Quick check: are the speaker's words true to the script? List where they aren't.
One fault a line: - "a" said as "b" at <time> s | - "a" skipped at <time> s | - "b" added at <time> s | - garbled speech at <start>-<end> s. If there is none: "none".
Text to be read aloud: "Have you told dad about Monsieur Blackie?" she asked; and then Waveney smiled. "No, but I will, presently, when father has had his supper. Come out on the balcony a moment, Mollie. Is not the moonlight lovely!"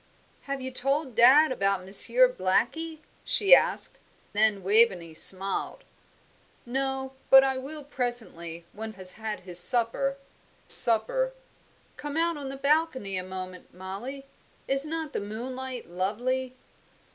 - "and" skipped at 4.0 s
- "father" skipped at 8.9 s
- "supper" added at 10.7 s